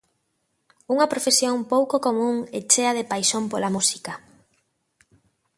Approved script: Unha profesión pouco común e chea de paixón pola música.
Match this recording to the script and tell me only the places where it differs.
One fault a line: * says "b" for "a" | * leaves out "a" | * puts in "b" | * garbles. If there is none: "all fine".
all fine